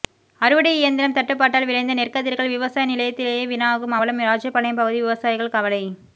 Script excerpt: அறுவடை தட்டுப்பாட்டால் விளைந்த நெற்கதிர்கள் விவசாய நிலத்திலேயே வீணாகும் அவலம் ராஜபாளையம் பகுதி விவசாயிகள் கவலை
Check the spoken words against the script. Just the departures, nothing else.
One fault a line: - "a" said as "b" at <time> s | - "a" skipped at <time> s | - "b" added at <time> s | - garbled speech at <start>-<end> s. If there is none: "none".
- "இயந்திரம்" added at 0.8 s